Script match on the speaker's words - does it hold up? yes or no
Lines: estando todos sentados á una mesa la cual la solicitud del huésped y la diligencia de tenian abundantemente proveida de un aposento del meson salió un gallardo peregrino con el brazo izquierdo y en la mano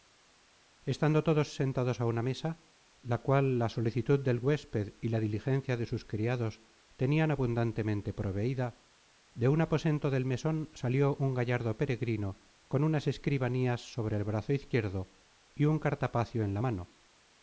no